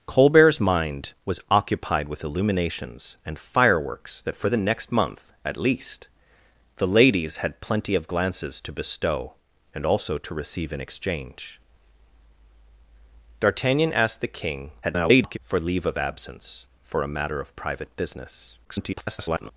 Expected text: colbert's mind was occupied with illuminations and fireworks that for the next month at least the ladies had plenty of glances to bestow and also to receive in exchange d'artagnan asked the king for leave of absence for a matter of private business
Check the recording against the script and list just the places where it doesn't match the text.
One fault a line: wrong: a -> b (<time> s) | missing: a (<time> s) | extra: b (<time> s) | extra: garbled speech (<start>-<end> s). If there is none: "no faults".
extra: garbled speech (14.8-15.4 s)
extra: garbled speech (18.6-19.5 s)